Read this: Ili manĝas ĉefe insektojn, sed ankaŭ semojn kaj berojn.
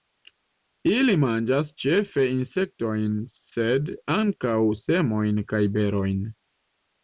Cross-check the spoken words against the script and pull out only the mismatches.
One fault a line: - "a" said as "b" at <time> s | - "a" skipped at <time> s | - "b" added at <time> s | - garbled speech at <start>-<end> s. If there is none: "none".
none